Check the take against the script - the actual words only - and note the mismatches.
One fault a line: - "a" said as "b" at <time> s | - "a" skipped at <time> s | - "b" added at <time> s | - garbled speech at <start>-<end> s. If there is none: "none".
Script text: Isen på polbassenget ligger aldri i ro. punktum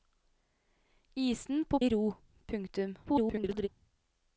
- "polbassenget ligger aldri" skipped at 1.8 s
- garbled speech at 3.1-3.7 s